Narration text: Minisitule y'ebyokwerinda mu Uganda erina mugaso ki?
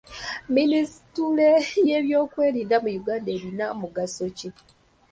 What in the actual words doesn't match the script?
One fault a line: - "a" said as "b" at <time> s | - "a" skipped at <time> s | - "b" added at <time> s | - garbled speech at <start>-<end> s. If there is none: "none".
none